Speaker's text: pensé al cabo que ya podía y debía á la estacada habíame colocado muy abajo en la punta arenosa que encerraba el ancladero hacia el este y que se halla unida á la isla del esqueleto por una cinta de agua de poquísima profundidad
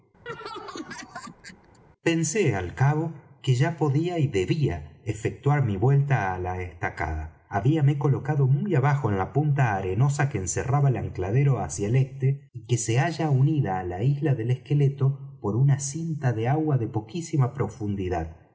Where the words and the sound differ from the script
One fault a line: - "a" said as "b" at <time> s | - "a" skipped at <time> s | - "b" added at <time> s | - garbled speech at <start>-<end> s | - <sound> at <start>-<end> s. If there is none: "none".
- laugh at 0.3-1.8 s
- "efectuar mi vuelta" added at 5.0 s